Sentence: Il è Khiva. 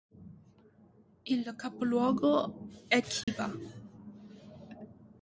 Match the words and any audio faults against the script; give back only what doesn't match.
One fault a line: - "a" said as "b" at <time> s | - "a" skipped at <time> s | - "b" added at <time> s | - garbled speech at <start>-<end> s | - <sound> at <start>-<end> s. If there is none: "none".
- "capoluogo" added at 1.6 s
- dropout at 3.2-3.3 s